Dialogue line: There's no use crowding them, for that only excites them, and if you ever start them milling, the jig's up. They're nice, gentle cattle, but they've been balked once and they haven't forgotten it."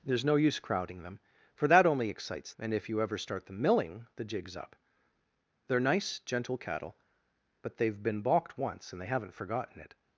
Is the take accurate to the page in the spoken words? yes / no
no